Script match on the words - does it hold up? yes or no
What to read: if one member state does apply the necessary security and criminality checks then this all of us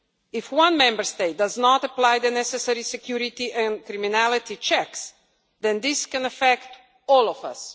no